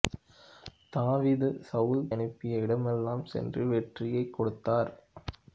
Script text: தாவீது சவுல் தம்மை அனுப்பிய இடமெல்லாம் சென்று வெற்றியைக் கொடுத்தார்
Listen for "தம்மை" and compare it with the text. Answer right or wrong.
wrong